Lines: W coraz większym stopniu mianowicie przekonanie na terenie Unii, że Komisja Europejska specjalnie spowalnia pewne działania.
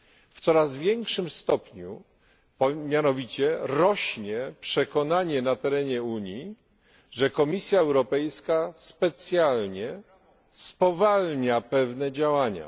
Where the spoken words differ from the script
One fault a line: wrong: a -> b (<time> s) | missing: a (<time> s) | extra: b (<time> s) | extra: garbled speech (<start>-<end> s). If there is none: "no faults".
extra: rośnie (3.6 s)